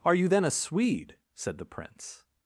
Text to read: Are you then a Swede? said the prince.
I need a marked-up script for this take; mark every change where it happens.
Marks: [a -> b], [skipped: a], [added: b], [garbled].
Are you then a Swede? said the prince.